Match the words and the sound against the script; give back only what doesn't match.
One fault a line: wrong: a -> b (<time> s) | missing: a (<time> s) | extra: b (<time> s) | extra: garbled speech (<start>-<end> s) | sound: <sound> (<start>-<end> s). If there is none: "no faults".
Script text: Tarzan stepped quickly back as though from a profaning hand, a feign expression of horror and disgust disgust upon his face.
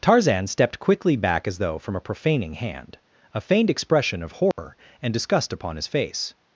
wrong: feign -> feigned (3.4 s)
sound: dropout (4.5-4.6 s)
missing: disgust (5.5 s)